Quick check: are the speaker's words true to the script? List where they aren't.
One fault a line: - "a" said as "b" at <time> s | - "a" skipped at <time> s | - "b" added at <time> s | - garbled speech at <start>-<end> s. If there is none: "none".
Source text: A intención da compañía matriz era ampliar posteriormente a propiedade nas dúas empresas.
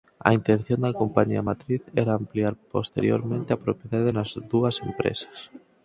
none